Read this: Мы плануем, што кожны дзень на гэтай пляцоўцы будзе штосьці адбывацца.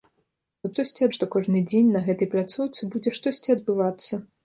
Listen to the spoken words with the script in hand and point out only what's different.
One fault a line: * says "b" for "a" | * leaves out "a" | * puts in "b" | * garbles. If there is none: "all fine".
* says "штосьці" for "плануем"